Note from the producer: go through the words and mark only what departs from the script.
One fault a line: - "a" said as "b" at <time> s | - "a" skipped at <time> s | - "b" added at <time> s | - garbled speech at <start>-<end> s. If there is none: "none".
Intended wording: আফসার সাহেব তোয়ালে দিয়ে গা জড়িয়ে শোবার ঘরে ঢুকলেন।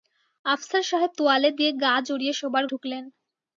- "ঘরে" skipped at 2.6 s